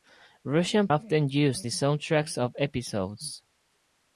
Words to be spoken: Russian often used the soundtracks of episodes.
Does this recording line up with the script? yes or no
yes